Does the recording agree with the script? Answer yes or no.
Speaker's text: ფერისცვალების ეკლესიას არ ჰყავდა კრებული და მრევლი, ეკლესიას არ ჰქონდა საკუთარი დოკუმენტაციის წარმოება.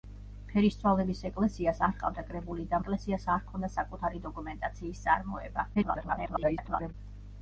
no